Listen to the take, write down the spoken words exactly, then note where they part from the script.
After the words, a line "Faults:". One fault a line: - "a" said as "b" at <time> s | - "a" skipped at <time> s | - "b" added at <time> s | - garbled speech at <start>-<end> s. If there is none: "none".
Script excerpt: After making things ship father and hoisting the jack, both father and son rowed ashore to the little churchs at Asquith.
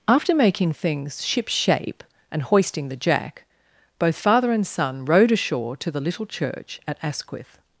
After making things ship shape and hoisting the jack, both father and son rowed ashore to the little church at Asquith.
Faults:
- "father" said as "shape" at 1.5 s
- "churchs" said as "church" at 6.2 s